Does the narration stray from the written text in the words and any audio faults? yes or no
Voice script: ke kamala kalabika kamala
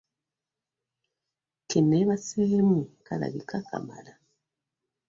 yes